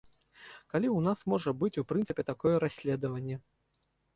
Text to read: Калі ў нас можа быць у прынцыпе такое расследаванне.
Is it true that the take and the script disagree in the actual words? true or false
false